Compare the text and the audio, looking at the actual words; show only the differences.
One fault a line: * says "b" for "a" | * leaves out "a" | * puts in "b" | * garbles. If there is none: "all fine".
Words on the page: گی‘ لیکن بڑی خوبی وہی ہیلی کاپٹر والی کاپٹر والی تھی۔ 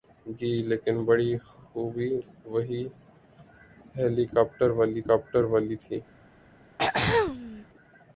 all fine